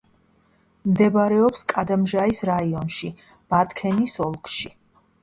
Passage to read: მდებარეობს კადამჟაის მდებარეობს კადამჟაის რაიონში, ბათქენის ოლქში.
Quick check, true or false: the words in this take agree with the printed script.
false